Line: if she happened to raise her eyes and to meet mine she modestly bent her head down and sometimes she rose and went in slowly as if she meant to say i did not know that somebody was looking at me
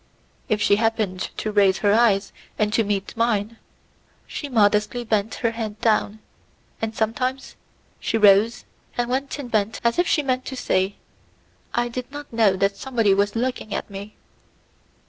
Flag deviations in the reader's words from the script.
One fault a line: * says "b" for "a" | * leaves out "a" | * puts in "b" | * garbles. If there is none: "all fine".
* says "bent" for "slowly"